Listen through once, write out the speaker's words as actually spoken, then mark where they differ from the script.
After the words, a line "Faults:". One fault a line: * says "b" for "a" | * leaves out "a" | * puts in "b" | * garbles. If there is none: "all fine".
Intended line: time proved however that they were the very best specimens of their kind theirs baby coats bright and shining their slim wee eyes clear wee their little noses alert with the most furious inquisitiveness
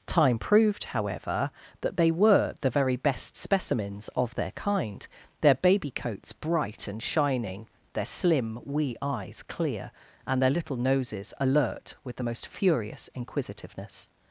time proved however that they were the very best specimens of their kind their baby coats bright and shining their slim wee eyes clear and their little noses alert with the most furious inquisitiveness
Faults:
* says "their" for "theirs"
* says "and" for "wee"